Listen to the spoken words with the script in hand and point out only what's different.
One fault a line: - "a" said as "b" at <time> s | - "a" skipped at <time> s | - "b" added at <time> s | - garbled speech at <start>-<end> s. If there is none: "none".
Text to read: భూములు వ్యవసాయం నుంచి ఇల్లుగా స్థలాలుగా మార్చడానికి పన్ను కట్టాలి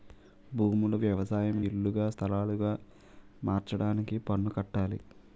- "నుంచి" skipped at 1.6 s